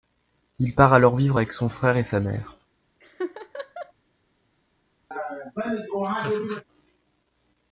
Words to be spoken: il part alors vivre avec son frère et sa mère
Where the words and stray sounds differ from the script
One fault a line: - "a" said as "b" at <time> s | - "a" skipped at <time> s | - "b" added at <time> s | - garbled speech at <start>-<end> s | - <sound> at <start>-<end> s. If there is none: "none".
- laugh at 3.0-3.9 s
- laugh at 5.1-6.6 s